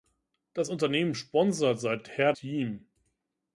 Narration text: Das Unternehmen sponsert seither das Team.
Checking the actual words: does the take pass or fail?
fail